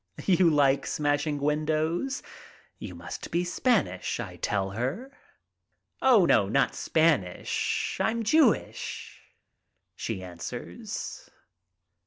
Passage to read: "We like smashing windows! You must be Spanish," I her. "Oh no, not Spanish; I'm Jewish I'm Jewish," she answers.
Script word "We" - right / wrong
wrong